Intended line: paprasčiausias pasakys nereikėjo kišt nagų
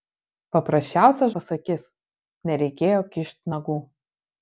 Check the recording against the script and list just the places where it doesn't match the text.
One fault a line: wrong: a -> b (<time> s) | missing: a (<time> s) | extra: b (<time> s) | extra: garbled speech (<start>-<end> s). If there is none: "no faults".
no faults